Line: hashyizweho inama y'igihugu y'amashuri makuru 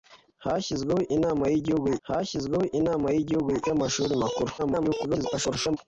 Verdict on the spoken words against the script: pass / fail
fail